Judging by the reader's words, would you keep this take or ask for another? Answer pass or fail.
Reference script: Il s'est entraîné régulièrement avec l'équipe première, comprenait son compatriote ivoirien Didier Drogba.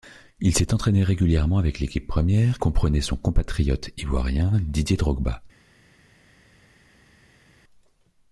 pass